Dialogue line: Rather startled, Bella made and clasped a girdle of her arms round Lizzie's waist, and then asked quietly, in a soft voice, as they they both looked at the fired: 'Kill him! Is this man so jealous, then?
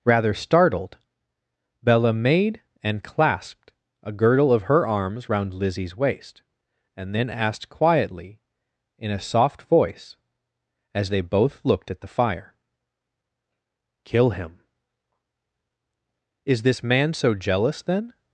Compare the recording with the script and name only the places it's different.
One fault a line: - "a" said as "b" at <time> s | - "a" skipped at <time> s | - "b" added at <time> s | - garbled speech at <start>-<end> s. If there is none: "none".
- "they" skipped at 11.2 s
- "fired" said as "fire" at 12.1 s